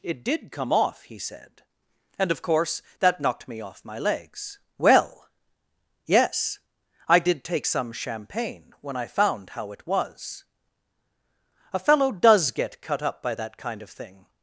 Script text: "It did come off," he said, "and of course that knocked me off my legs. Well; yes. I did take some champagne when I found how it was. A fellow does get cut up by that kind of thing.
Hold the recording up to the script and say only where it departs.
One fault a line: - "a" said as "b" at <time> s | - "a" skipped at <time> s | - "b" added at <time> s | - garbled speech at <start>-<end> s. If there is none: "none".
none